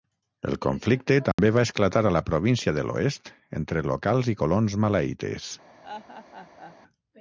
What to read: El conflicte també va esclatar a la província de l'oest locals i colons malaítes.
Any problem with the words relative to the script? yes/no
yes